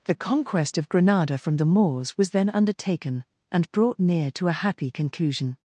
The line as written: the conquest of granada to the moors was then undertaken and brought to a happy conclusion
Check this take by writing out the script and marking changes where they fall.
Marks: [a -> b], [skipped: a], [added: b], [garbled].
the conquest of granada [to -> from] the moors was then undertaken and brought [added: near] to a happy conclusion